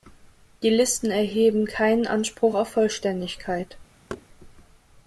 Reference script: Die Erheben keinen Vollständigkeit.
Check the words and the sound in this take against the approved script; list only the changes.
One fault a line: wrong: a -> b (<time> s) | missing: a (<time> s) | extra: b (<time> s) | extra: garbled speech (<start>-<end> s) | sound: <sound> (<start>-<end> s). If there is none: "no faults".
extra: Listen (0.7 s)
extra: Anspruch auf (2.1 s)
sound: thud (4.1-4.3 s)